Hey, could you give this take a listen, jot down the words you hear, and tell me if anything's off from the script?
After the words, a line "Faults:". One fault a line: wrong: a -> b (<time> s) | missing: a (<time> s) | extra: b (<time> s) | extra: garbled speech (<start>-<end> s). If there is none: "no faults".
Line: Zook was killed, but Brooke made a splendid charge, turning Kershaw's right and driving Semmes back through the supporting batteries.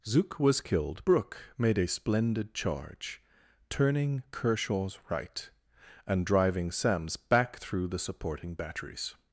Zook was killed, Brooke made a splendid charge, turning Kershaw's right and driving Semmes back through the supporting batteries.
Faults:
missing: but (1.0 s)